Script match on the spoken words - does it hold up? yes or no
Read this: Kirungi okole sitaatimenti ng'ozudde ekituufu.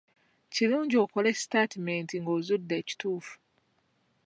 yes